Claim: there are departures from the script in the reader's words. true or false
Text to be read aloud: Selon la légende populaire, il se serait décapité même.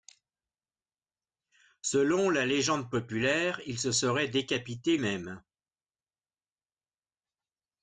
false